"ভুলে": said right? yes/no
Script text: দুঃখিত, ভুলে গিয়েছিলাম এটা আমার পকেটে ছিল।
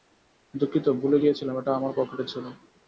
yes